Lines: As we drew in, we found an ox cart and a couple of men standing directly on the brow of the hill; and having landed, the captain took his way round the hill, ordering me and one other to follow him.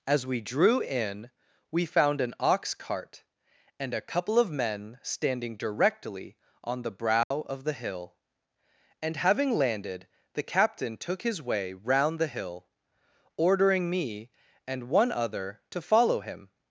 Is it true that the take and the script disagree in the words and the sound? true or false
true